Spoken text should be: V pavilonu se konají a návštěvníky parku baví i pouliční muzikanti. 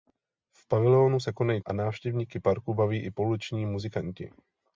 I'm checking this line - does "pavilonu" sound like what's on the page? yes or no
yes